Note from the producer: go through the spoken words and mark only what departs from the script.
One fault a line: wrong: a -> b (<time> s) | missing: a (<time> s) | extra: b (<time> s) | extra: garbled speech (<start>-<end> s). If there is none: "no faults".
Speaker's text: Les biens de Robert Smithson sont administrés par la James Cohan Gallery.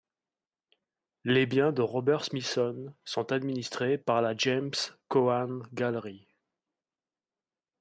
no faults